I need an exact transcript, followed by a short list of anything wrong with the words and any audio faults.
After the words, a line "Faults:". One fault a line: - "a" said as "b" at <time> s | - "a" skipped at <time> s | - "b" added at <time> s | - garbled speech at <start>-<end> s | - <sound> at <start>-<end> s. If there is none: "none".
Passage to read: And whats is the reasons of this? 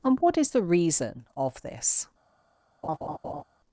And what is the reason of this?
Faults:
- "whats" said as "what" at 0.2 s
- "reasons" said as "reason" at 0.6 s
- laugh at 2.8-3.4 s